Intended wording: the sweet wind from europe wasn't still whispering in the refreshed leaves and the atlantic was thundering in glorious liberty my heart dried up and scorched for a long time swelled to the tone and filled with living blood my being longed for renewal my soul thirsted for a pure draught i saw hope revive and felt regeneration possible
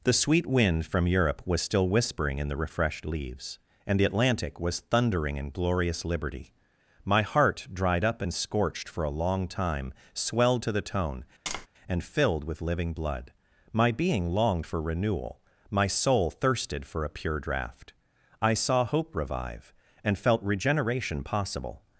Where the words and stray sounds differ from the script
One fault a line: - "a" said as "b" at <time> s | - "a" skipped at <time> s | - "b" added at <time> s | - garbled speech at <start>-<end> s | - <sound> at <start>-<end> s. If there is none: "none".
- "wasn't" said as "was" at 1.4 s
- tap at 11.5-11.7 s